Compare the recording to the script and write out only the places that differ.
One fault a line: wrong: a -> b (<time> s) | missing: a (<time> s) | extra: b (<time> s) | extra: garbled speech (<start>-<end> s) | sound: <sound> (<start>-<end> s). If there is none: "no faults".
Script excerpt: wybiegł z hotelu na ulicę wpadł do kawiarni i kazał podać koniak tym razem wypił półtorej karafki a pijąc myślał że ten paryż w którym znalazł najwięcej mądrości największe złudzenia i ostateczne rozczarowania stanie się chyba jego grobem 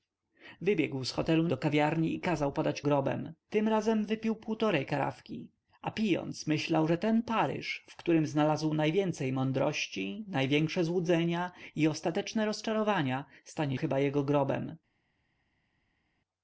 missing: na ulicę wpadł (1.5 s)
wrong: koniak -> grobem (2.8 s)
missing: się (13.8 s)